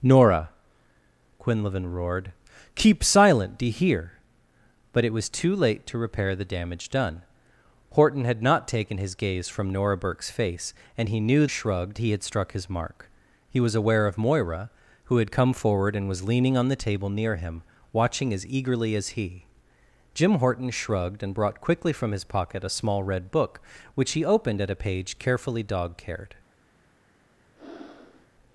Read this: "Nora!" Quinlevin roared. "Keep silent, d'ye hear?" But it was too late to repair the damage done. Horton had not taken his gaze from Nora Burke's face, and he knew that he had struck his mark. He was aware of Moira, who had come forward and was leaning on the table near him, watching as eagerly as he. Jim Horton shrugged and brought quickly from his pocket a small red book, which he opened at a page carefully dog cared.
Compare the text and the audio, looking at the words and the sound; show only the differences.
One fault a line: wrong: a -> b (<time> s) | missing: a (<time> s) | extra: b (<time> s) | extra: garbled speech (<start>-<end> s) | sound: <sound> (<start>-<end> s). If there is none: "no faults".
wrong: that -> shrugged (11.4 s)
sound: breath (27.6-28.3 s)